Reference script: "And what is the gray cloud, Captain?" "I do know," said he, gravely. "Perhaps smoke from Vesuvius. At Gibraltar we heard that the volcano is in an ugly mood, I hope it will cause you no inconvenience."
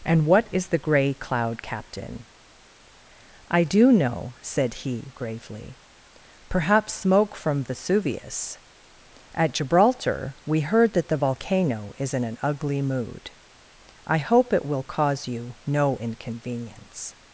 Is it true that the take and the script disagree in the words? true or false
false